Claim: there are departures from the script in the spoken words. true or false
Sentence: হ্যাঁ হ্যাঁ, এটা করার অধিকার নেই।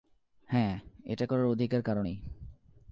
true